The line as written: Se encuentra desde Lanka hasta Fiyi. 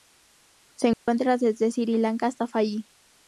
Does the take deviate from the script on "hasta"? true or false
false